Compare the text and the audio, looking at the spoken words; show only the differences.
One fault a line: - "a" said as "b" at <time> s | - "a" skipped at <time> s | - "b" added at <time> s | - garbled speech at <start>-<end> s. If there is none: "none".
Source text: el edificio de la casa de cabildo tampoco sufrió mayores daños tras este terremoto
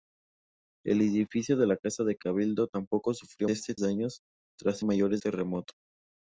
- "mayores" said as "este" at 3.5 s
- "este" said as "mayores" at 4.8 s